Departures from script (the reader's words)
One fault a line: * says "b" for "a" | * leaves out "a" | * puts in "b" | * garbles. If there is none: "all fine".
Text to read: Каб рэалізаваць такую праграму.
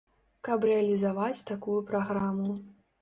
all fine